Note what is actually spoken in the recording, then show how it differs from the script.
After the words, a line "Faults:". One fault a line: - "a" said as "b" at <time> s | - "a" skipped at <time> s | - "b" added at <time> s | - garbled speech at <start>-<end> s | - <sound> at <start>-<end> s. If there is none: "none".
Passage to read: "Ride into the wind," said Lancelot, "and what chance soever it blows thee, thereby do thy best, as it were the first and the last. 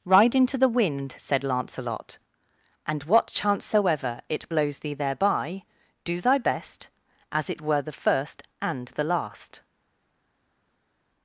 "Ride into the wind," said Lancelot, "and what chance soever it blows thee, thereby do thy best, as it were the first and the last.
Faults:
none